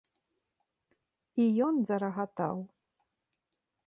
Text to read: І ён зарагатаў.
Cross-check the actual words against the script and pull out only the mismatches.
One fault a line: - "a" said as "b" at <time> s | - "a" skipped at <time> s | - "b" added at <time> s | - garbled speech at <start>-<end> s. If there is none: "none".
none